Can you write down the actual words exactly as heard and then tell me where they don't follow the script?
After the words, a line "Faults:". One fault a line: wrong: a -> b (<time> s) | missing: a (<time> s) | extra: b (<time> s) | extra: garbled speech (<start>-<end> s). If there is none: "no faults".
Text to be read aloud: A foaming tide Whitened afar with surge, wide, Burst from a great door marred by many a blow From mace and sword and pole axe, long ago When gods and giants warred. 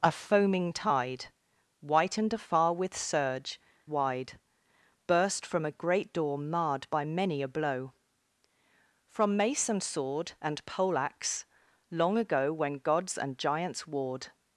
A foaming tide Whitened afar with surge, wide, Burst from a great door marred by many a blow From mace and sword and pole axe, long ago When gods and giants warred.
Faults:
no faults